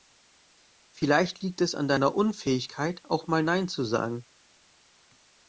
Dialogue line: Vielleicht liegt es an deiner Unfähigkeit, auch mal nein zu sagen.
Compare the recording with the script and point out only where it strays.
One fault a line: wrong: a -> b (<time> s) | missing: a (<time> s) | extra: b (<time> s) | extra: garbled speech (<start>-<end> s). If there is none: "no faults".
no faults